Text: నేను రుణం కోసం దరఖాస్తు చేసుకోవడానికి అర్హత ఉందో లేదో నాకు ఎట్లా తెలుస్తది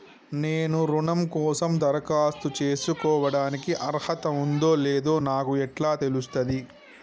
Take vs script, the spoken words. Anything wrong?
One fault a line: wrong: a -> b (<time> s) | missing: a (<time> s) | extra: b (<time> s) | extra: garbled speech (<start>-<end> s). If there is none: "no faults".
no faults